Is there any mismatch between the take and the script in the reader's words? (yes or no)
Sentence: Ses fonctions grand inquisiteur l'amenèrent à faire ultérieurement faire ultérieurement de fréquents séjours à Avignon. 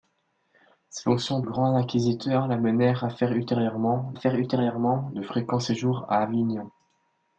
no